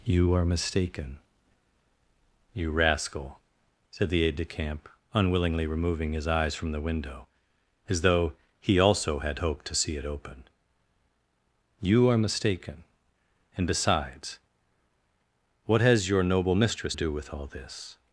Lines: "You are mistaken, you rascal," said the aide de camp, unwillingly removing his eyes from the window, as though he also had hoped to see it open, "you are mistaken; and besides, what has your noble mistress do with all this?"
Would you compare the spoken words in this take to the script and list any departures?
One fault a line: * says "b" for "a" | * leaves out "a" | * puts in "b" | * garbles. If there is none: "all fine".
all fine